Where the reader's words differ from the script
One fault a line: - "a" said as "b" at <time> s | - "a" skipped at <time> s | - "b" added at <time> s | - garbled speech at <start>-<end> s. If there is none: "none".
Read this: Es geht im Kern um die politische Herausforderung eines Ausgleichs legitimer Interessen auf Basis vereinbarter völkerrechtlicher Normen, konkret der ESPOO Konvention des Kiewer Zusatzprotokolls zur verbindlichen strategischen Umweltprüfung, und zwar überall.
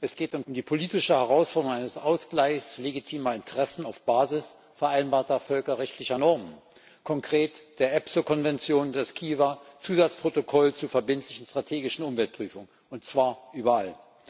- "Kern" skipped at 0.5 s